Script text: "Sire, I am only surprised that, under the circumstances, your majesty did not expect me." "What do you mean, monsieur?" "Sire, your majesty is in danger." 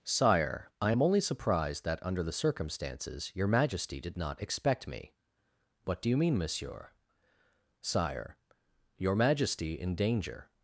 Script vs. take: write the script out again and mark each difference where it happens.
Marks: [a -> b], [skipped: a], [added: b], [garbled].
"Sire, I am only surprised that, under the circumstances, your majesty did not expect me." "What do you mean, monsieur?" "Sire, your majesty [skipped: is] in danger."